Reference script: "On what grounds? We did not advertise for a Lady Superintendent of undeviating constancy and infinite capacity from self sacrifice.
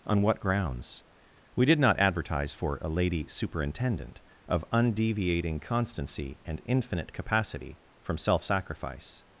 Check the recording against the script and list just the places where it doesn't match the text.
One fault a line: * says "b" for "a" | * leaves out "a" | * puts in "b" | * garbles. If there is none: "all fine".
all fine